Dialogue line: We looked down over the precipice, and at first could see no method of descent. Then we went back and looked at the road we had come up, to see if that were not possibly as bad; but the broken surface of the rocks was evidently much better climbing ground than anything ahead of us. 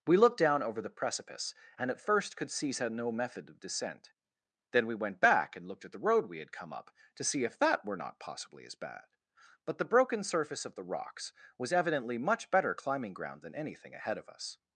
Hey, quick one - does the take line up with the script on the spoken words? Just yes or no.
yes